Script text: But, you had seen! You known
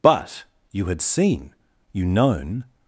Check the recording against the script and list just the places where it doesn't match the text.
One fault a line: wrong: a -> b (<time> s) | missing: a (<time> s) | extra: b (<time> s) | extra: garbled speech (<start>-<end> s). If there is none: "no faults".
no faults